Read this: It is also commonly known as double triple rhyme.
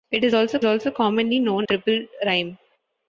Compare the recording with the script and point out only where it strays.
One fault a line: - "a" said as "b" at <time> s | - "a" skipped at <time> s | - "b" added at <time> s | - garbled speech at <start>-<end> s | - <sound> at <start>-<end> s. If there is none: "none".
- "also" added at 0.6 s
- "as double" skipped at 1.7 s